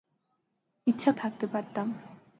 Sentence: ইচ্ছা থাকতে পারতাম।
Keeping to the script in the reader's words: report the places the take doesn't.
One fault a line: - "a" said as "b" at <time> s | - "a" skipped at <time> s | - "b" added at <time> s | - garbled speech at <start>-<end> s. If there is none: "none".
none